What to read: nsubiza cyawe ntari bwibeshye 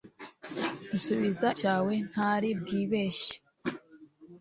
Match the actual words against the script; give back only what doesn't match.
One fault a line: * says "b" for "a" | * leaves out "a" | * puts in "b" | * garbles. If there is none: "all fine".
all fine